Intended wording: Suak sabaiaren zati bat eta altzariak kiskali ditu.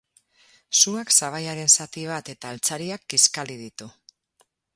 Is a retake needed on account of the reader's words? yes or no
no